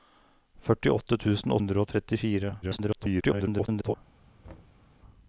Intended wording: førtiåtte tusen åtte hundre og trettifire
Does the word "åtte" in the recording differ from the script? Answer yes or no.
yes